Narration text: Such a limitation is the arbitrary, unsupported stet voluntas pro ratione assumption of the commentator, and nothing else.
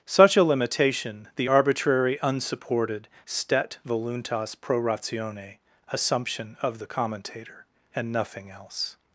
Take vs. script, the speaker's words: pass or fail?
fail